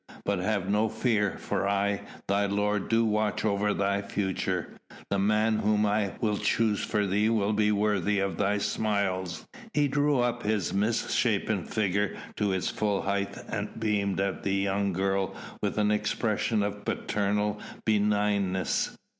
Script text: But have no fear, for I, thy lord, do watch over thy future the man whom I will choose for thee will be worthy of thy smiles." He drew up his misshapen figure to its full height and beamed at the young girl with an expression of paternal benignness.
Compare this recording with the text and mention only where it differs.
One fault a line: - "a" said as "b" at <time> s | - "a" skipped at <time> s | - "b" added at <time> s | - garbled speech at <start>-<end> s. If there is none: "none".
none